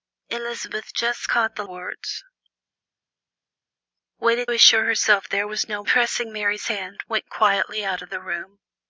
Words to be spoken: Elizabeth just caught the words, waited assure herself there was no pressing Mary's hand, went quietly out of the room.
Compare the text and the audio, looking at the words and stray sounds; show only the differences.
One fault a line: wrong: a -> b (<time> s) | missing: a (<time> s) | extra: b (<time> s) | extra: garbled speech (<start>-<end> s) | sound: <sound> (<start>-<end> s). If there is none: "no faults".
no faults